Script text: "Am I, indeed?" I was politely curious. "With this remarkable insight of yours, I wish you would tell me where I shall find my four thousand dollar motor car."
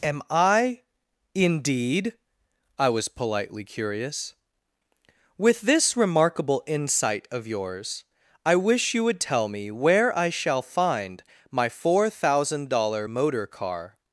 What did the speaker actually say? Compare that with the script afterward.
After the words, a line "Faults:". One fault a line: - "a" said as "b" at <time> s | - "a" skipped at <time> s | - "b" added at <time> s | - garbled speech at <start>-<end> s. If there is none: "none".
"Am I, indeed?" I was politely curious. "With this remarkable insight of yours, I wish you would tell me where I shall find my four thousand dollar motor car."
Faults:
none